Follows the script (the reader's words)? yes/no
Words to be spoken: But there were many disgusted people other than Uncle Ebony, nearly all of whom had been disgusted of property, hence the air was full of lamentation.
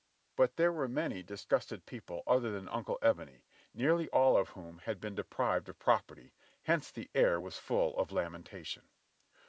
no